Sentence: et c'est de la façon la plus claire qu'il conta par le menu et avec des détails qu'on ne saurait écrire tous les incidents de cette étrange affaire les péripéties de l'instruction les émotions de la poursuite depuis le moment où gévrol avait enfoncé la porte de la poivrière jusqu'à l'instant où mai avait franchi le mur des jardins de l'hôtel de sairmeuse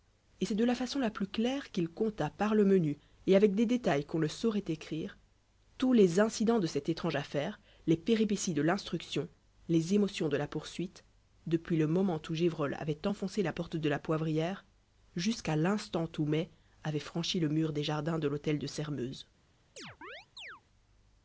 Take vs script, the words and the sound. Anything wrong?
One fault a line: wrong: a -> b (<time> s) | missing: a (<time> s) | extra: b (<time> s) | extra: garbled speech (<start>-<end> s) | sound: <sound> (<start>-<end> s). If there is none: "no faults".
sound: chirp (19.8-20.6 s)